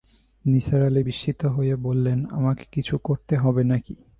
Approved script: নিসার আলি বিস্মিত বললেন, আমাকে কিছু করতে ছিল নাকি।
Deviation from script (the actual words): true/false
true